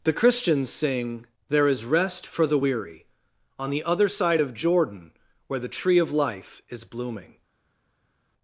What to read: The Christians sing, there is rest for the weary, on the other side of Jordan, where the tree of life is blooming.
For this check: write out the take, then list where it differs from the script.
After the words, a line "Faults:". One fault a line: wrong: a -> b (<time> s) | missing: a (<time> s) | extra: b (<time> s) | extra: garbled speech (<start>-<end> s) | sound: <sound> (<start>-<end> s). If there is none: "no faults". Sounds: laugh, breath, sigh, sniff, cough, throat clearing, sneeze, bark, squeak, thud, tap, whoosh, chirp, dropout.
The Christians sing, there is rest for the weary, on the other side of Jordan, where the tree of life is blooming.
Faults:
no faults